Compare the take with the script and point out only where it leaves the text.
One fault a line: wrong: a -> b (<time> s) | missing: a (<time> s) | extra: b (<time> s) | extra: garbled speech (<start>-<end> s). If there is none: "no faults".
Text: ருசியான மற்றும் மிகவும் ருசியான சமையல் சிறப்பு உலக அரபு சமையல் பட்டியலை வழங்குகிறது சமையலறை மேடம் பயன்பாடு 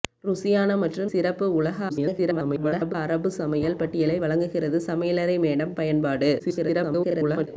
missing: மிகவும் ருசியான சமையல் (1.1 s)
extra: garbled speech (1.9-2.9 s)
extra: garbled speech (6.4-7.5 s)